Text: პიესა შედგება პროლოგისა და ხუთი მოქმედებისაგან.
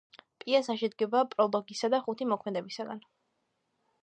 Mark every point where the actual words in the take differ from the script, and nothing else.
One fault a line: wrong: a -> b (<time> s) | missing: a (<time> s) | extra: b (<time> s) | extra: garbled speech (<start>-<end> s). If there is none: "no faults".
no faults